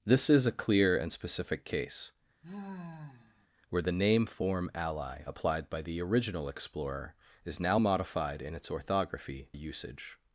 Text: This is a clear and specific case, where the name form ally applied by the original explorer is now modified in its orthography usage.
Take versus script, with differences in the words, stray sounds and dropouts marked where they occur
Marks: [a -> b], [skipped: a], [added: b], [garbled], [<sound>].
This is a clear and specific case, [sigh] where the name form ally applied by the original explorer is now modified in its orthography usage.